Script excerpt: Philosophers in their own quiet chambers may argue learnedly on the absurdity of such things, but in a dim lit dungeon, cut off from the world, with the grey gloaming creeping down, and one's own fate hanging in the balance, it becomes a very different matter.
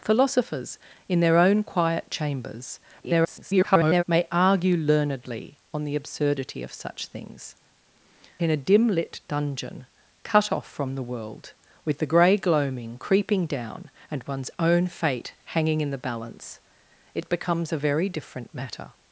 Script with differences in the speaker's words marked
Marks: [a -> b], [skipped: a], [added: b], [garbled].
Philosophers in their own quiet chambers [garbled] may argue learnedly on the absurdity of such things, [skipped: but] in a dim lit dungeon, cut off from the world, with the grey gloaming creeping down, and one's own fate hanging in the balance, it becomes a very different matter.